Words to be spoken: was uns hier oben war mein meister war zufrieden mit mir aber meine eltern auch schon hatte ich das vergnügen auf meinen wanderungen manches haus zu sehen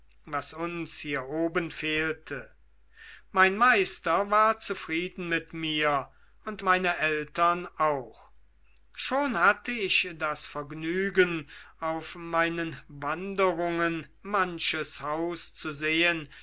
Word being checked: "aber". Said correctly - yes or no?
no